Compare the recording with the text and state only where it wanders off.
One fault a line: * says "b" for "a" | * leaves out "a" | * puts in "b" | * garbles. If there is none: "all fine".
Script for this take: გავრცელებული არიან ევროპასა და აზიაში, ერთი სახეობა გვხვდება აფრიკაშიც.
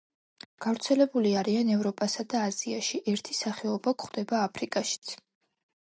all fine